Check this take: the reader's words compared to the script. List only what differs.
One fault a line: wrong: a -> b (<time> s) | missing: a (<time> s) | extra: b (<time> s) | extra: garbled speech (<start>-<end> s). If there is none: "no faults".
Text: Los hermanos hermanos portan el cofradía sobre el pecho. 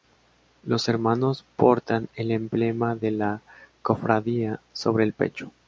missing: hermanos (1.4 s)
extra: emblema de la (2.3 s)